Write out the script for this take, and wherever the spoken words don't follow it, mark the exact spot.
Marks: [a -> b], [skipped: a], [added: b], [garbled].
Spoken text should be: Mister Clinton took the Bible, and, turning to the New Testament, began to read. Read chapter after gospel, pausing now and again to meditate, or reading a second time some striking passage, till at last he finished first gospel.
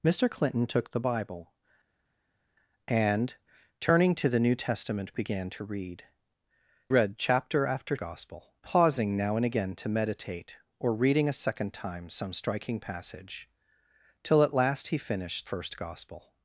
Mister Clinton took the Bible, and, turning to the New Testament, began to read. Read chapter after gospel, pausing now and again to meditate, or reading a second time some striking passage, till at last he finished first gospel.